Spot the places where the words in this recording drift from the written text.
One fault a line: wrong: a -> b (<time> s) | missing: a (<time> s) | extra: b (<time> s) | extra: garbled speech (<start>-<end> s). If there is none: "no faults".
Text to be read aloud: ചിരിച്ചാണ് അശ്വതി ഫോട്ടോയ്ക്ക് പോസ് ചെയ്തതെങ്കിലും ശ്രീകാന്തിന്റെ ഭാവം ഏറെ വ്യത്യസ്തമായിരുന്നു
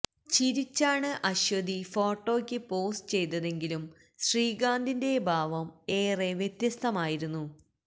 no faults